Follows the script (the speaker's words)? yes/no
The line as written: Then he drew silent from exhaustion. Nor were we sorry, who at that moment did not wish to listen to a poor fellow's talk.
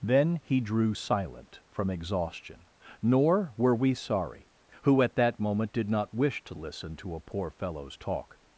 yes